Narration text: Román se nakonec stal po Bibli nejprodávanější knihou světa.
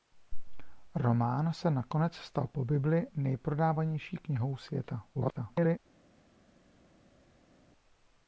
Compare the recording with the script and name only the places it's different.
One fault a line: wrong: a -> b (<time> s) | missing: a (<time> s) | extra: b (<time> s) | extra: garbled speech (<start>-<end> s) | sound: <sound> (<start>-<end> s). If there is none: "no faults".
extra: garbled speech (5.1-5.8 s)